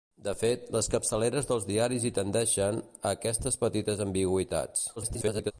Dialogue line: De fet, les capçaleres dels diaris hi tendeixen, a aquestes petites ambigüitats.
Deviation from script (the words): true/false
true